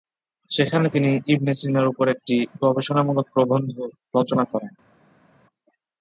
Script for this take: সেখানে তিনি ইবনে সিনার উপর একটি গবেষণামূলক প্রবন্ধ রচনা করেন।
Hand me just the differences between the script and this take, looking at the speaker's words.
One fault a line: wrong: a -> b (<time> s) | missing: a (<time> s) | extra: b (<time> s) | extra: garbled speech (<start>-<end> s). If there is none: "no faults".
no faults